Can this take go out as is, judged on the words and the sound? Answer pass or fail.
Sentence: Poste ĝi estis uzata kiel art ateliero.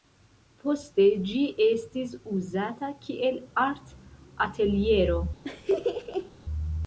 fail